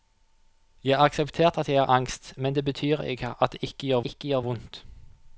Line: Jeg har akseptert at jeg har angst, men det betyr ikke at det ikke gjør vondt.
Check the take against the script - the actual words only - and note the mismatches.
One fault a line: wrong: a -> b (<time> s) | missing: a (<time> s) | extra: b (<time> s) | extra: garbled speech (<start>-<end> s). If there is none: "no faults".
extra: ikke gjør (4.1 s)